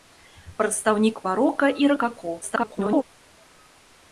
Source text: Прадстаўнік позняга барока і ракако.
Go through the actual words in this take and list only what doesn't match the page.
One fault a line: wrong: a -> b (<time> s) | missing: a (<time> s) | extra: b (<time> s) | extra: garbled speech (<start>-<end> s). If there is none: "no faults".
missing: позняга (1.2 s)
extra: garbled speech (2.4-3.0 s)